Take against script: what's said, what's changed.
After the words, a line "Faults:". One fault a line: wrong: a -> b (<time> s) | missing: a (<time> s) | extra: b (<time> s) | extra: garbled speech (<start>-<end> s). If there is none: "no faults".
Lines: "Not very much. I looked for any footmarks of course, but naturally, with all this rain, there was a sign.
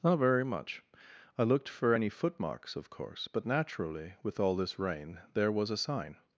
"Not very much. I looked for any footmarks of course, but naturally, with all this rain, there was a sign.
Faults:
no faults